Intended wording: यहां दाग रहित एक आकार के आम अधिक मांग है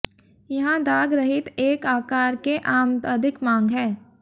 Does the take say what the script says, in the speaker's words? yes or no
yes